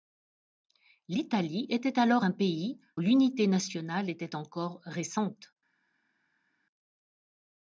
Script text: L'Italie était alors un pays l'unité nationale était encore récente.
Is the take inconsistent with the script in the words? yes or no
no